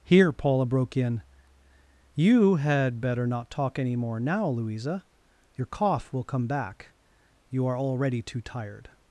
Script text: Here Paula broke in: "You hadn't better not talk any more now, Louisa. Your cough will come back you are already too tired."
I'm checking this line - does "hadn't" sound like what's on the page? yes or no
no